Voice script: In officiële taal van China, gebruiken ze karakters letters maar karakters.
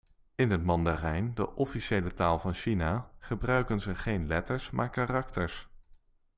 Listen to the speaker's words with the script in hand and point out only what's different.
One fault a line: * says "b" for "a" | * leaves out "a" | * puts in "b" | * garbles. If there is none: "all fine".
* puts in "het Mandarijn de"
* says "geen" for "karakters"